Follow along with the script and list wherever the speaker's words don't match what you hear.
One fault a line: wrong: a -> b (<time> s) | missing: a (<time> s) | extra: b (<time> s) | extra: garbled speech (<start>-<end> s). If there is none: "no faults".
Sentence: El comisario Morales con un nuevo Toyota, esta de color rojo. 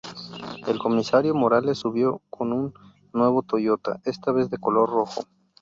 extra: subió (1.8 s)
extra: vez (4.3 s)